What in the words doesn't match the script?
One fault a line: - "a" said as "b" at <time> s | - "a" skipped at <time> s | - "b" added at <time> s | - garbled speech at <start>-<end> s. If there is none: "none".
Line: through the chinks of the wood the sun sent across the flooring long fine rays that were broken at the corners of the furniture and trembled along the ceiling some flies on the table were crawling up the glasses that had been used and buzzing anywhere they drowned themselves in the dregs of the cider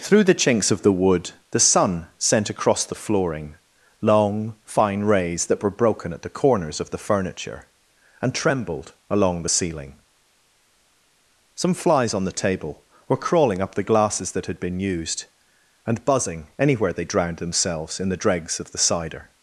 none